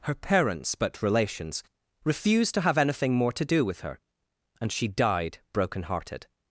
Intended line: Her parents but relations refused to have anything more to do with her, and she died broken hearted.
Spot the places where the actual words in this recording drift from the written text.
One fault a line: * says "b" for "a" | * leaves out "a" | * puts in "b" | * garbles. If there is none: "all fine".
all fine